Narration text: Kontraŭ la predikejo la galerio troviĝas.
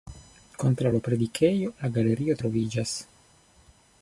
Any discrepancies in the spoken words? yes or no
no